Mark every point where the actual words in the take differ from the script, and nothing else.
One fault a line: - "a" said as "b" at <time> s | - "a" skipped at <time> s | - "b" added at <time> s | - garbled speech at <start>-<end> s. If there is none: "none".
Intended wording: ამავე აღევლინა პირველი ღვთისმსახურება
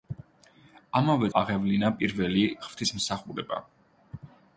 none